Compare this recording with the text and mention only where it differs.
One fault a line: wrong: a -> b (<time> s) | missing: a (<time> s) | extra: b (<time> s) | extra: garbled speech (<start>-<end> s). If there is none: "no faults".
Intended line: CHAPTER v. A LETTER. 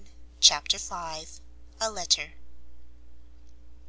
no faults